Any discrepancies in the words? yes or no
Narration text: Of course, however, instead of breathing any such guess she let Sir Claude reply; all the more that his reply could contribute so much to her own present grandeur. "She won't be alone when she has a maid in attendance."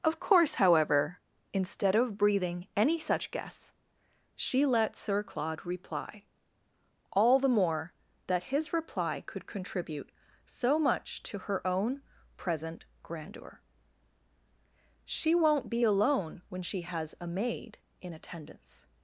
no